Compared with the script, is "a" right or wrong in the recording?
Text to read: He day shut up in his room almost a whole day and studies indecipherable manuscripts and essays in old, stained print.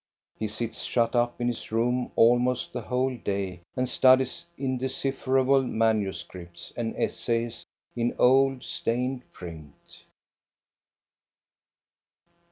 wrong